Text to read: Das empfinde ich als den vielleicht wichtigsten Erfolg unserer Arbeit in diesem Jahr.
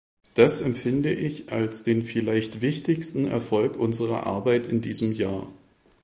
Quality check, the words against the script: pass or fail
pass